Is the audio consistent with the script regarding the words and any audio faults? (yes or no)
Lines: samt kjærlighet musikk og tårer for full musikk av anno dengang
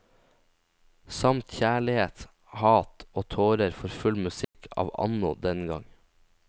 no